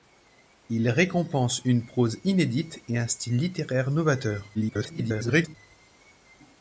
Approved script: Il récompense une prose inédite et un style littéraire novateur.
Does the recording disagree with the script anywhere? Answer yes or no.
yes